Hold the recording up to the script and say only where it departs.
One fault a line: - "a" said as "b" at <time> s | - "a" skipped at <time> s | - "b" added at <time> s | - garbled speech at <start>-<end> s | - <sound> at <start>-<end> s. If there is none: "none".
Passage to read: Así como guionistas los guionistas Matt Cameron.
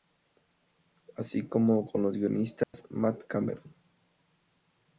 - "guionistas" said as "con" at 1.8 s
- dropout at 2.6-2.7 s